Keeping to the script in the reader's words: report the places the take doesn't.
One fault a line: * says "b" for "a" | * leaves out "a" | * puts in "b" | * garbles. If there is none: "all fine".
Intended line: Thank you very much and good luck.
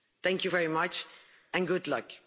all fine